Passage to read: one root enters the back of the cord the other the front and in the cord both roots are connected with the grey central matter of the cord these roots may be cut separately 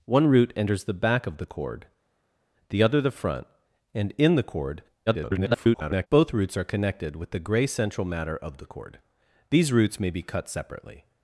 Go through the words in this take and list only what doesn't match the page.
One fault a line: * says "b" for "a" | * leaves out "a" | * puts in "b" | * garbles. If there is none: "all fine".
* garbles